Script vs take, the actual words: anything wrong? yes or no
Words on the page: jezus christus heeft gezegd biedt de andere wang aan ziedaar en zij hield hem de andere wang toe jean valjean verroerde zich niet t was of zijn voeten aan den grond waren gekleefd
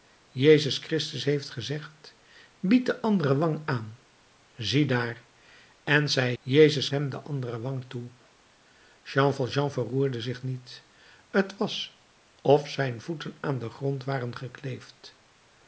yes